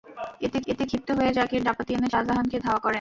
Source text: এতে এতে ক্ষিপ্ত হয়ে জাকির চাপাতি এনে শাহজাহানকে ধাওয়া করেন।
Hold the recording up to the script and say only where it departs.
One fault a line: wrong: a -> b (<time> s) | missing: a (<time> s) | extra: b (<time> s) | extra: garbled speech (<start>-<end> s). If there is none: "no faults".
no faults